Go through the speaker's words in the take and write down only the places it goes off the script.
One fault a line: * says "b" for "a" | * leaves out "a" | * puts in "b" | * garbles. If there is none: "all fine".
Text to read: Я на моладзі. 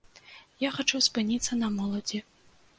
* puts in "хачу спыніцца"